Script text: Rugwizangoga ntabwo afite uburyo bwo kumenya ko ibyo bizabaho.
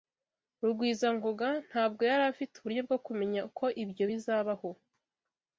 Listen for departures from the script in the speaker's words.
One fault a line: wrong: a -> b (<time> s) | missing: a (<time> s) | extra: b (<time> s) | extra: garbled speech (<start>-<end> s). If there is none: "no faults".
extra: yari (2.1 s)